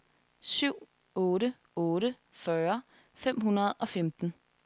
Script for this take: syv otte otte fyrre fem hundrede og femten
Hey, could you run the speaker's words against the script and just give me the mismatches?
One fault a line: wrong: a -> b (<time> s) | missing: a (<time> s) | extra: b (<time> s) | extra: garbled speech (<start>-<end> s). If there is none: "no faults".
no faults